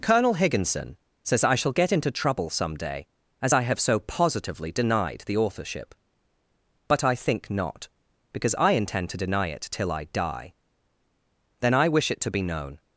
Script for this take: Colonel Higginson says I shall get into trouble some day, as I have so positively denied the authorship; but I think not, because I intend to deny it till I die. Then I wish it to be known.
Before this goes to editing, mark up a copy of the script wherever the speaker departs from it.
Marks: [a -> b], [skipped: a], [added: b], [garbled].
Colonel Higginson says I shall get into trouble some day, as I have so positively denied the authorship; but I think not, because I intend to deny it till I die. Then I wish it to be known.